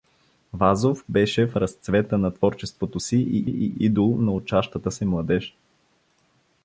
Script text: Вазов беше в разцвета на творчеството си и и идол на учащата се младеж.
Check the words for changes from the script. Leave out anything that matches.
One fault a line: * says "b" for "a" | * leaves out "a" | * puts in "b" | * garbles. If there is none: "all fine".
all fine